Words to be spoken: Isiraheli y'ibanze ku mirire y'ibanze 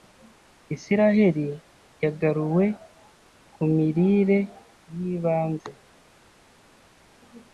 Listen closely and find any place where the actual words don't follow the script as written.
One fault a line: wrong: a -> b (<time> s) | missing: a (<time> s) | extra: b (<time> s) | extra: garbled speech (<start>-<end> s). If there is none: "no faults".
wrong: y'ibanze -> yagaruwe (2.0 s)